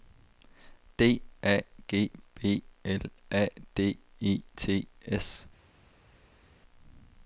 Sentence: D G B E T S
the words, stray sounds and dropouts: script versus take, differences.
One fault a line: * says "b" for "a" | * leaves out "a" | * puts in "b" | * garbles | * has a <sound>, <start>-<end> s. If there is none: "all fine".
* puts in "A"
* puts in "L A D"